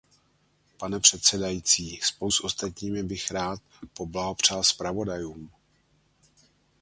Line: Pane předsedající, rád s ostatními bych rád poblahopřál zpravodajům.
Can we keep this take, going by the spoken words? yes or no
no